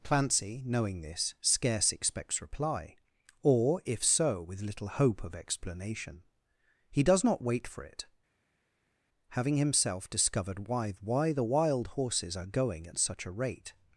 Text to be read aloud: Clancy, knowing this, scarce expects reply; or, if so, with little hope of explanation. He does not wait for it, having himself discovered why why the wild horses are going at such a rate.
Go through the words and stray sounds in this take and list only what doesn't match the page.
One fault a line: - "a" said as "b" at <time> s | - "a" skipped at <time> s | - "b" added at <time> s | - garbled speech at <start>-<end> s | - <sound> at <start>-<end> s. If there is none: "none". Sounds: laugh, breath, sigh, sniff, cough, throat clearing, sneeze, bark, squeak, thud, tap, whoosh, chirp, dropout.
none